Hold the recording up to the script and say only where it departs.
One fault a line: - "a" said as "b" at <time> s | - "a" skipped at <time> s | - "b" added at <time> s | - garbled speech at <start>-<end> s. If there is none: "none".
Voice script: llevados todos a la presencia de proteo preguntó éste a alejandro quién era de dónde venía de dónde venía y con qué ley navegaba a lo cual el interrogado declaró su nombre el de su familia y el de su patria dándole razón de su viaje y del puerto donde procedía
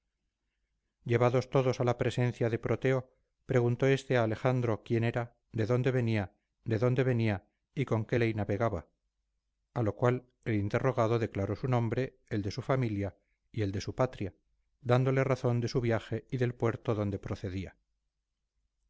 none